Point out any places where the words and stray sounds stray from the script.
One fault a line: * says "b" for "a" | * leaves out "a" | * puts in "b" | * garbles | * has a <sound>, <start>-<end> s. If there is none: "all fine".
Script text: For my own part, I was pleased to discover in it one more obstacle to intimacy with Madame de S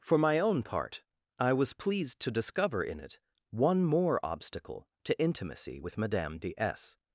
all fine